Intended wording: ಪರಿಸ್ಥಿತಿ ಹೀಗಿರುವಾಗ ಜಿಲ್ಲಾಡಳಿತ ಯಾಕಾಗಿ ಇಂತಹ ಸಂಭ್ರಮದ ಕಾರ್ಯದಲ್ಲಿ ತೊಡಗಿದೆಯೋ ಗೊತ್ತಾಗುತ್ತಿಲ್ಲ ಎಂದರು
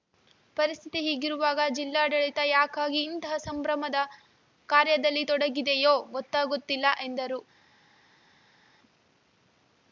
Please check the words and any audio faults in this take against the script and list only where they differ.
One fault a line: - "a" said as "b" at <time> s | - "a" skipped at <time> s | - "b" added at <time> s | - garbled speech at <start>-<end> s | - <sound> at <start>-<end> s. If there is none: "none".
none